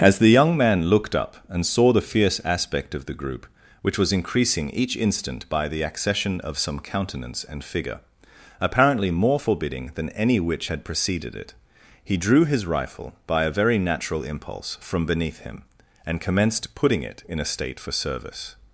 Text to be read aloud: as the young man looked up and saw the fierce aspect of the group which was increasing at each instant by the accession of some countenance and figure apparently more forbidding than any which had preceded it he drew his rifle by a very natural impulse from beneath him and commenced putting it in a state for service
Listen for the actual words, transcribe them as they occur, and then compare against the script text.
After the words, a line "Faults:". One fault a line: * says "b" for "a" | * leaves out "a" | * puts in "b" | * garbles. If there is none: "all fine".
as the young man looked up and saw the fierce aspect of the group which was increasing each instant by the accession of some countenance and figure apparently more forbidding than any which had preceded it he drew his rifle by a very natural impulse from beneath him and commenced putting it in a state for service
Faults:
* leaves out "at"